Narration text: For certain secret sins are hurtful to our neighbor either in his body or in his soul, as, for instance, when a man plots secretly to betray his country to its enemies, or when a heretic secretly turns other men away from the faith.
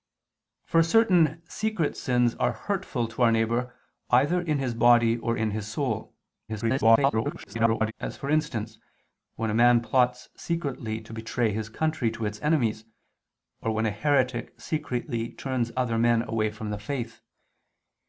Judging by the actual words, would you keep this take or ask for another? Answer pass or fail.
fail